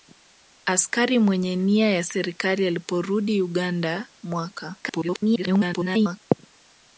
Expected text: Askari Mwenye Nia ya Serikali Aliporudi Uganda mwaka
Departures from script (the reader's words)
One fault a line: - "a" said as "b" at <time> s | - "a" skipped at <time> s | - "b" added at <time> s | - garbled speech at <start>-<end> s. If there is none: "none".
- garbled speech at 4.8-6.2 s